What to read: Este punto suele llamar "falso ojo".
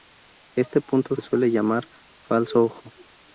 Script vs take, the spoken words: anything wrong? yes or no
no